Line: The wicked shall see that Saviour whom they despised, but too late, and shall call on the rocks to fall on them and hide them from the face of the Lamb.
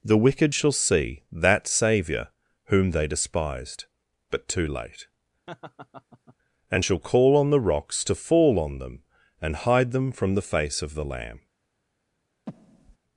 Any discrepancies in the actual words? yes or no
no